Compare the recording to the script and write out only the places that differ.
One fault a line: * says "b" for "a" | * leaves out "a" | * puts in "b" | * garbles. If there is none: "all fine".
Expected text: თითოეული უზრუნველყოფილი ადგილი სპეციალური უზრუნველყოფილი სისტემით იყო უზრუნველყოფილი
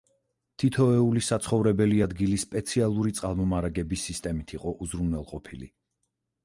* says "საცხოვრებელი" for "უზრუნველყოფილი"
* says "წყალმომარაგების" for "უზრუნველყოფილი"